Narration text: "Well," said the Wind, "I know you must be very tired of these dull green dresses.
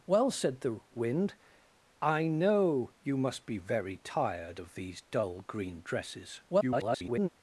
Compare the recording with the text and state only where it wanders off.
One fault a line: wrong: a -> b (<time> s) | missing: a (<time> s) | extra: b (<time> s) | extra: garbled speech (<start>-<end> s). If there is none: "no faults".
extra: garbled speech (6.5-7.3 s)